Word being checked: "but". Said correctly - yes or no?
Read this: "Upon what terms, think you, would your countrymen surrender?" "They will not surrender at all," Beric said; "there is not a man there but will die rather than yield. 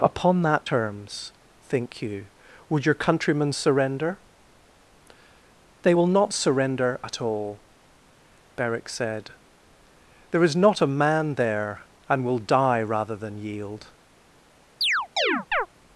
no